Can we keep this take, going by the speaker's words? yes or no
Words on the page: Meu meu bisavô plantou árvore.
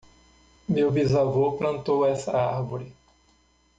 no